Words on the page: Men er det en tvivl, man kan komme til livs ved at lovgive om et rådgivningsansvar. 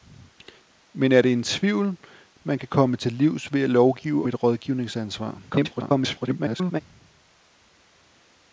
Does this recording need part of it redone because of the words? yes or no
yes